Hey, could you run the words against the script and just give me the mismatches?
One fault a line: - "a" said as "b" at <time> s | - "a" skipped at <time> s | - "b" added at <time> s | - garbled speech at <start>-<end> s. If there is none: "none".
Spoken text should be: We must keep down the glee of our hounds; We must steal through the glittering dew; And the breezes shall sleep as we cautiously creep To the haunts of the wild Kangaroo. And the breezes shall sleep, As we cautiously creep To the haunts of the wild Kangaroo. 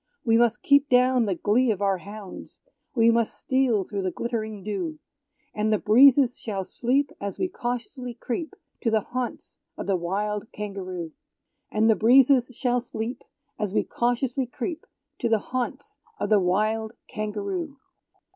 none